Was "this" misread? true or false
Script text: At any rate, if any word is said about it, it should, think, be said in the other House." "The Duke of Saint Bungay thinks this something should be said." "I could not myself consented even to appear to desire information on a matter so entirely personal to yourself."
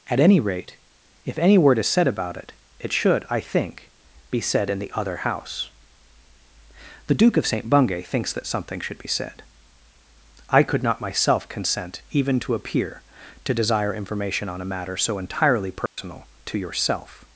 true